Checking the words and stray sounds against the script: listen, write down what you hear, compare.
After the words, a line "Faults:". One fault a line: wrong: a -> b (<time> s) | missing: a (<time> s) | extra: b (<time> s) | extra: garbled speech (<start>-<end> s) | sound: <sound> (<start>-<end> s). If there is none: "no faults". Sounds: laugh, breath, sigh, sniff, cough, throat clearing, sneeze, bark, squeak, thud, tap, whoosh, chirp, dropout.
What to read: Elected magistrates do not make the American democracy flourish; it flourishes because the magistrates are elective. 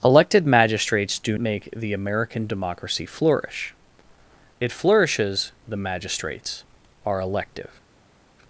Elected magistrates do make the American democracy flourish; it flourishes the magistrates are elective.
Faults:
missing: not (1.4 s)
missing: because (5.5 s)